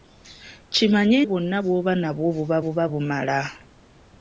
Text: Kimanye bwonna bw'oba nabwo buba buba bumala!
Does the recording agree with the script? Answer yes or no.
yes